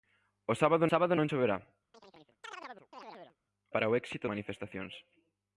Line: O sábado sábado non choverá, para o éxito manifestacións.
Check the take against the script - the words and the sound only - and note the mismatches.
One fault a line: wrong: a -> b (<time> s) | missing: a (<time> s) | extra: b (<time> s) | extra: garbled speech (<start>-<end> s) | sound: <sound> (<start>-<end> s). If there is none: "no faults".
sound: chirp (1.9-3.4 s)